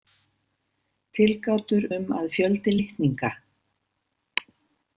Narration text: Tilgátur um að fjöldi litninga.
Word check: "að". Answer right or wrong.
right